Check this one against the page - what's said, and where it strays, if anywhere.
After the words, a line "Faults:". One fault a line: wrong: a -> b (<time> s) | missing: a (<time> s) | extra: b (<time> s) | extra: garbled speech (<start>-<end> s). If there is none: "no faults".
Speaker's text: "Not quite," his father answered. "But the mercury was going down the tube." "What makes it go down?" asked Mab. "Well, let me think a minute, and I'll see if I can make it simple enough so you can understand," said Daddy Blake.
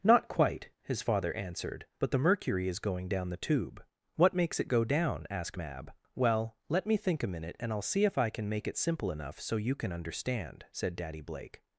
"Not quite," his father answered. "But the mercury is going down the tube." "What makes it go down?" asked Mab. "Well, let me think a minute, and I'll see if I can make it simple enough so you can understand," said Daddy Blake.
Faults:
wrong: was -> is (2.7 s)